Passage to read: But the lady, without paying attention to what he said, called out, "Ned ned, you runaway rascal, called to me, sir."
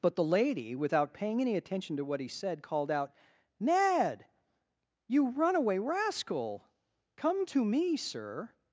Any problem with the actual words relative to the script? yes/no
yes